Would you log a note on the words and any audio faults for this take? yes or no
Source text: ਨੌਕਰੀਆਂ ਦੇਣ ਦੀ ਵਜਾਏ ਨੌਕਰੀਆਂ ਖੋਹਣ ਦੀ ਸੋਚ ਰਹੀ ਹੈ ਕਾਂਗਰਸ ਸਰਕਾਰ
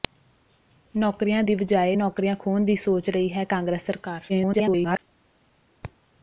yes